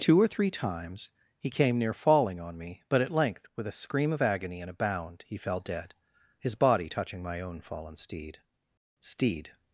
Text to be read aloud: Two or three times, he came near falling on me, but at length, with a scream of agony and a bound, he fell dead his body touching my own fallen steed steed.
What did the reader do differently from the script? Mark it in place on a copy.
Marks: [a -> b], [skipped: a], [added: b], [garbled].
Two or three times, he came near falling on me, but at length, with a scream of agony and a bound, he fell dead his body touching my own fallen steed steed.